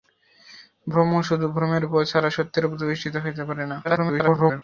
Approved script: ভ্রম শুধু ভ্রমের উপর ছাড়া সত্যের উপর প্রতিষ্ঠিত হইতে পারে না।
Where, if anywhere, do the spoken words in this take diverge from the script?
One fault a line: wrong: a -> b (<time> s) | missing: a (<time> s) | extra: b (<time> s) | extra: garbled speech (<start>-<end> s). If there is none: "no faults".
extra: garbled speech (3.8-4.6 s)